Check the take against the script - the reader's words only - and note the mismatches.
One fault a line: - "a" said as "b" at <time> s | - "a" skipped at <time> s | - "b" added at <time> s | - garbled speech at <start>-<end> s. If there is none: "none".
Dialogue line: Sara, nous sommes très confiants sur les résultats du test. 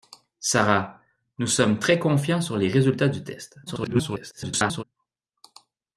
- garbled speech at 3.7-4.8 s